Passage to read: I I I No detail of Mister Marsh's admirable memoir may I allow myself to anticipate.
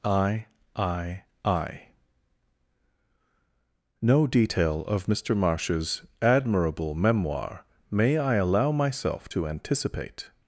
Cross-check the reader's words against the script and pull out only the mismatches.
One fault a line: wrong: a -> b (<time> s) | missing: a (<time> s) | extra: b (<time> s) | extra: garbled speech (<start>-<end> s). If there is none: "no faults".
no faults